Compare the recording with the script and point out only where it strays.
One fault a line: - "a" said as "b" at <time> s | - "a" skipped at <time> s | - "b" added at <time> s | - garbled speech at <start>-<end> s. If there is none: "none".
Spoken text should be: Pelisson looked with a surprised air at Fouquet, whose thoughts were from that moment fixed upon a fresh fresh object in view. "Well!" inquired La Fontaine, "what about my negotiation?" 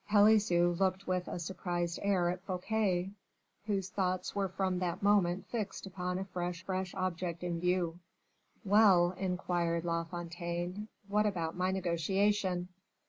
none